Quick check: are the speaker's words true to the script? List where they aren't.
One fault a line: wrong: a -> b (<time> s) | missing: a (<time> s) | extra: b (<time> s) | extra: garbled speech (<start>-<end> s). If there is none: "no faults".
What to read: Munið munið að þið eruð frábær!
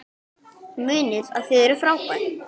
missing: munið (1.3 s)